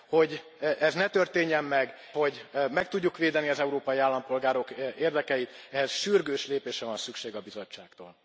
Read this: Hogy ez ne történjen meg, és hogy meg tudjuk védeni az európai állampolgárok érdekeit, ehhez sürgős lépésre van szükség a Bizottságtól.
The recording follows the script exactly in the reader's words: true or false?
false